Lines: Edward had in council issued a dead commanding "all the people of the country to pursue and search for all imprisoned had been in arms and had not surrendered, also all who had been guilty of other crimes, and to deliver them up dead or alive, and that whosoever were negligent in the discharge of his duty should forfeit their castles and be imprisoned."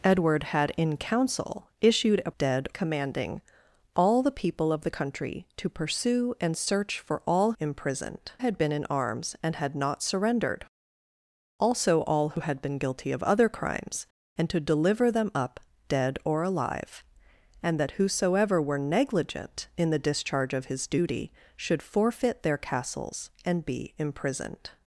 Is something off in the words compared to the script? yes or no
no